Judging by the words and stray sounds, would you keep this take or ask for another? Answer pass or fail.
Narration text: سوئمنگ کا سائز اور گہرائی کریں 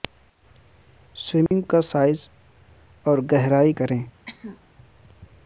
fail